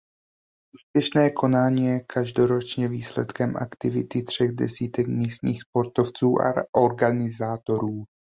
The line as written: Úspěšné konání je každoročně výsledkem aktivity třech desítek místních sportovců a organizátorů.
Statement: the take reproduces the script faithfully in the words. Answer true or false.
true